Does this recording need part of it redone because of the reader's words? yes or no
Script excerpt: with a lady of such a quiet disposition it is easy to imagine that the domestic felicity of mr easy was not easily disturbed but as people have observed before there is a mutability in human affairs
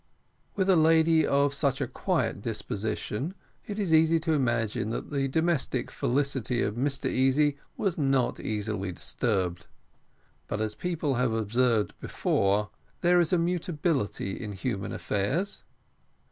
no